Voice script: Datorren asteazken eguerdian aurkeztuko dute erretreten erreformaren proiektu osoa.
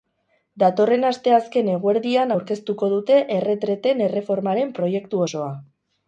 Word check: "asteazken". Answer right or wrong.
right